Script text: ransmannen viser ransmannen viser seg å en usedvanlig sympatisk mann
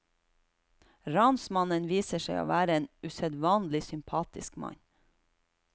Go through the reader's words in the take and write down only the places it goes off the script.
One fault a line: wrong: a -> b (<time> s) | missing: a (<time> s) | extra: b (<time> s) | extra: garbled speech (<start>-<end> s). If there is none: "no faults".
missing: ransmannen viser (2.2 s)
extra: være (2.5 s)